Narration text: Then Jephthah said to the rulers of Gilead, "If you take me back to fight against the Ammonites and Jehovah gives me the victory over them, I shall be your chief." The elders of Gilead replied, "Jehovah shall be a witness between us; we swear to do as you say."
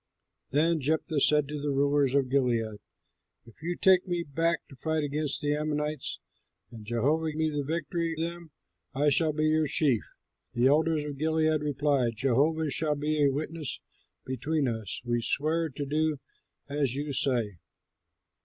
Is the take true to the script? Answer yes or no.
no